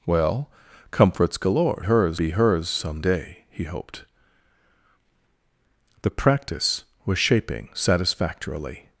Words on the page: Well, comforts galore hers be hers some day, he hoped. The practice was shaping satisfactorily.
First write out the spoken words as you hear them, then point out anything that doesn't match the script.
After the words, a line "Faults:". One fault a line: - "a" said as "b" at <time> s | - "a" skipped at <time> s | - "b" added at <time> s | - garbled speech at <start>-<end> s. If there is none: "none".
Well, comforts galore hers be hers some day, he hoped. The practice was shaping satisfactorily.
Faults:
none